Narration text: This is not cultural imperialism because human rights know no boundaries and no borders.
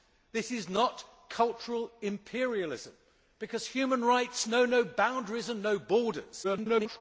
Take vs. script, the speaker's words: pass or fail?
fail